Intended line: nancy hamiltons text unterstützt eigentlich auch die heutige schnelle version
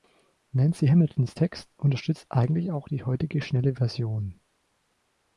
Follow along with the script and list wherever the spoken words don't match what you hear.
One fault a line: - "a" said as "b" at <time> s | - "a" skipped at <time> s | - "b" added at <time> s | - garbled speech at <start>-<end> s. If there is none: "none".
none